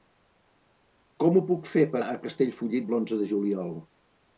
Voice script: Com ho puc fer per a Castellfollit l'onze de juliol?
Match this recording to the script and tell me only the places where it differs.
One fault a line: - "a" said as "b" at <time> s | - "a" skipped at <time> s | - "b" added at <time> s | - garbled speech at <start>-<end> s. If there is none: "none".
none